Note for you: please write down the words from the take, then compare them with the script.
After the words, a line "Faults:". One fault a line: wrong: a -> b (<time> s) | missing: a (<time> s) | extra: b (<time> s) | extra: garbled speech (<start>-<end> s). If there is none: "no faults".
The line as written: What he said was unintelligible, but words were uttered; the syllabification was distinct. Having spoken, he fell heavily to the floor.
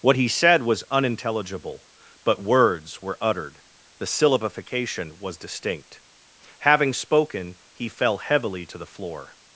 What he said was unintelligible, but words were uttered; the syllabification was distinct. Having spoken, he fell heavily to the floor.
Faults:
no faults